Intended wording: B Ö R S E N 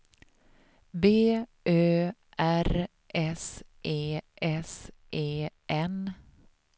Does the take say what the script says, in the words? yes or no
no